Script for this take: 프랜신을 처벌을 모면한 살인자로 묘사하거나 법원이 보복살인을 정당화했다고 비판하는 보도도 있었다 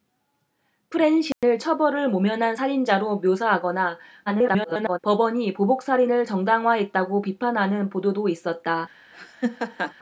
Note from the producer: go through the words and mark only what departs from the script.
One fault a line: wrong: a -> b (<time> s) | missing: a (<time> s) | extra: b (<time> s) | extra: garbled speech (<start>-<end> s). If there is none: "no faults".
extra: garbled speech (4.3-5.0 s)